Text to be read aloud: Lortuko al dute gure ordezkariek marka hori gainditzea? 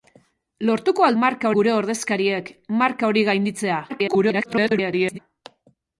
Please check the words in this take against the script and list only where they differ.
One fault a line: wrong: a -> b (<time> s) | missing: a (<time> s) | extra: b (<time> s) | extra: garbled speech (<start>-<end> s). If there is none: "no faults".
wrong: dute -> marka (1.2 s)
extra: garbled speech (3.9-5.2 s)